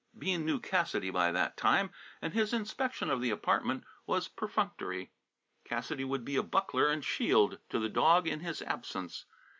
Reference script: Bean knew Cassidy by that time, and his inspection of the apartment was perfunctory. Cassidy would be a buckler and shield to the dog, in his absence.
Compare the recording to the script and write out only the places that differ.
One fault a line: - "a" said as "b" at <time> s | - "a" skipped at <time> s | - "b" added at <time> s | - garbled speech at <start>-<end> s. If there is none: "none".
none